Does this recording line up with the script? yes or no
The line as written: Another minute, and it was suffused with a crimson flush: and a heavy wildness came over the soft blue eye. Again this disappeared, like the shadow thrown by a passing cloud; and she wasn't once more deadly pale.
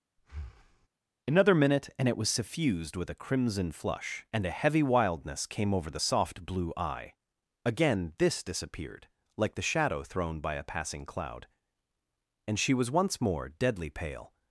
no